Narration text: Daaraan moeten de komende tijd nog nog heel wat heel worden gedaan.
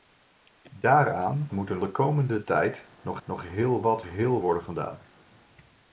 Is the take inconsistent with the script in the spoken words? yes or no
no